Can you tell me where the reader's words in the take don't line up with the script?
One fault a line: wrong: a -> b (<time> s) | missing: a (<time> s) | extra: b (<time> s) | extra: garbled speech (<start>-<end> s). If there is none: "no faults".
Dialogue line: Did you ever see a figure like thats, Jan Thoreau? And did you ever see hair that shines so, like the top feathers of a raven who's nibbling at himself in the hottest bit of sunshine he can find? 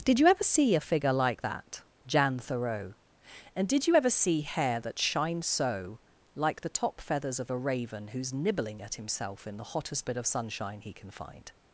wrong: thats -> that (1.4 s)